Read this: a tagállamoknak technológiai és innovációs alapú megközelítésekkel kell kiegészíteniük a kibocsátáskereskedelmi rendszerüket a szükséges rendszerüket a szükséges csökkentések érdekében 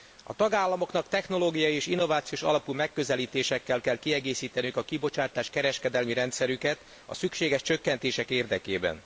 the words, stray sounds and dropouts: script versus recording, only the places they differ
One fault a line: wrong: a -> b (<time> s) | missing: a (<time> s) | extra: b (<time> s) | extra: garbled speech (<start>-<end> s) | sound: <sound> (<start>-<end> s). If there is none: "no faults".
missing: rendszerüket a szükséges (7.6 s)